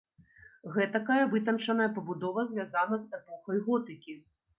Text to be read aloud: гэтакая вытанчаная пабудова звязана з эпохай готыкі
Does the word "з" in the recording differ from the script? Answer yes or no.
no